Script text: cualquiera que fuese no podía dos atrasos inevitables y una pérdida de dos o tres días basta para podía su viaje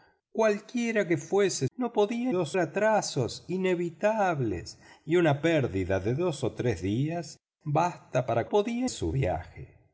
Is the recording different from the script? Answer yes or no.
no